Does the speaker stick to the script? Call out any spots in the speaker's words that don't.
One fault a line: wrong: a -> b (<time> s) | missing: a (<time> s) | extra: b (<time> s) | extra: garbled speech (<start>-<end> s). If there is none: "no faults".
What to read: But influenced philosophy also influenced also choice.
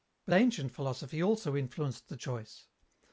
wrong: influenced -> ancient (0.3 s)
wrong: also -> the (2.1 s)